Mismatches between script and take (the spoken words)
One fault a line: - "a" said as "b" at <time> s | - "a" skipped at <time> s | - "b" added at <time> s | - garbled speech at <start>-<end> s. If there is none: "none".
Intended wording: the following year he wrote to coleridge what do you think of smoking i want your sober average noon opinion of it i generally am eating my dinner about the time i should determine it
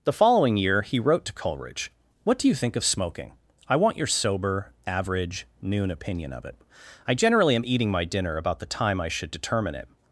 none